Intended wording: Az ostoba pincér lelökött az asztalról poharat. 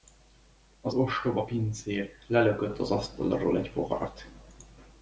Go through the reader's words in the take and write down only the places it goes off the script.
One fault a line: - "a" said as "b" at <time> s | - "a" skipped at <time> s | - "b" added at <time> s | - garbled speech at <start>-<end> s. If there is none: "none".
- "egy" added at 3.6 s